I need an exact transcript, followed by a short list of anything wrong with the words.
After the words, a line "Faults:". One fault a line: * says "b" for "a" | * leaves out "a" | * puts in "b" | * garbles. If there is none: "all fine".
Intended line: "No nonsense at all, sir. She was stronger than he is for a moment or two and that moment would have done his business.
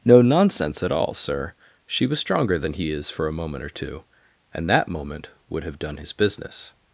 "No nonsense at all, sir. She was stronger than he is for a moment or two and that moment would have done his business.
Faults:
all fine